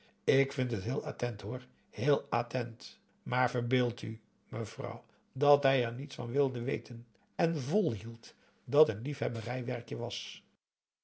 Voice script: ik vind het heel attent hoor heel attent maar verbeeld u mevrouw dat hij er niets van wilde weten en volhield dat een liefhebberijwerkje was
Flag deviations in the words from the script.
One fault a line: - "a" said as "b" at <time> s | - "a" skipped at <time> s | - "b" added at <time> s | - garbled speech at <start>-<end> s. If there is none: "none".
none